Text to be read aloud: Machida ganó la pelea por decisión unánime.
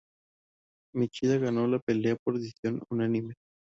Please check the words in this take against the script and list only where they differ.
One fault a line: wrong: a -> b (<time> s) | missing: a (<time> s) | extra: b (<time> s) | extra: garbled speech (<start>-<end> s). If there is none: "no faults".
no faults